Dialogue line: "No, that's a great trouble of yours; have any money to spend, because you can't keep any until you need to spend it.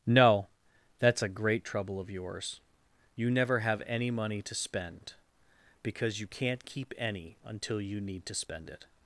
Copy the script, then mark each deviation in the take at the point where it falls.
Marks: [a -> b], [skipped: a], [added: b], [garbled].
"No, that's a great trouble of yours; [added: you never] have any money to spend, because you can't keep any until you need to spend it.